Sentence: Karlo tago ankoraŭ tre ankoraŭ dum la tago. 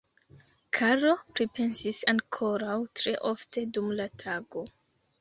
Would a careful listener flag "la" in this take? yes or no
no